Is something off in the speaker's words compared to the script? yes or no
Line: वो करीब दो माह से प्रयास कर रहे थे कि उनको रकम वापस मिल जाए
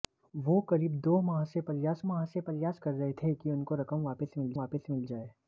yes